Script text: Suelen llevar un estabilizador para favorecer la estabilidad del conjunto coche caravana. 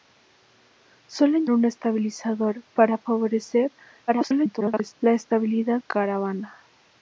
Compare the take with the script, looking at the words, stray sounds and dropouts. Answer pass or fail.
fail